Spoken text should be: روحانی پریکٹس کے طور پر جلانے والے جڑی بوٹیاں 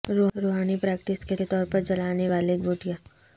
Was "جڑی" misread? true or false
true